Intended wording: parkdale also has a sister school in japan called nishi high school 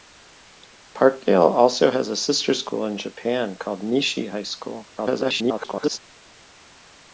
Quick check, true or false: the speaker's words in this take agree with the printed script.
false